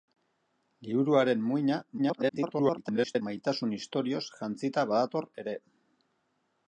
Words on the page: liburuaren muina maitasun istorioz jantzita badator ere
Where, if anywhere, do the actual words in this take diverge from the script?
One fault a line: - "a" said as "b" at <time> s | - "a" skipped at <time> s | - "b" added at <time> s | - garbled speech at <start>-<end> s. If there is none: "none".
- garbled speech at 2.0-3.2 s